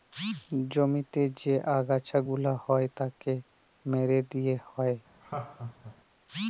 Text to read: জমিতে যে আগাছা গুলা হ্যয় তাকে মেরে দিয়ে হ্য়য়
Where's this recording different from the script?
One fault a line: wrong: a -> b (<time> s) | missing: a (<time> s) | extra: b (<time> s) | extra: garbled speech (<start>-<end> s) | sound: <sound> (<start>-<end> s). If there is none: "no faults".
sound: laugh (5.2-5.9 s)